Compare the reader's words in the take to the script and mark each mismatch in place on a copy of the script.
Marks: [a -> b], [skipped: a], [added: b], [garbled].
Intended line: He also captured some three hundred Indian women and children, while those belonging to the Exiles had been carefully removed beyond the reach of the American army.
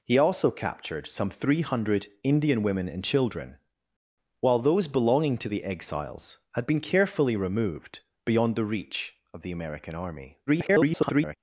He also captured some three hundred Indian women and children, while those belonging to the Exiles had been carefully removed beyond the reach of the American army. [garbled]